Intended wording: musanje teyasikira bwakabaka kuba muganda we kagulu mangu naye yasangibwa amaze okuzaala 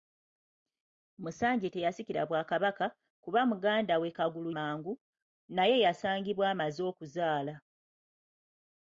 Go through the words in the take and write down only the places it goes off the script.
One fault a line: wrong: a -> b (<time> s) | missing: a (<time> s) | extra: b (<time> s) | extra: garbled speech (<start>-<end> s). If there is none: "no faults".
no faults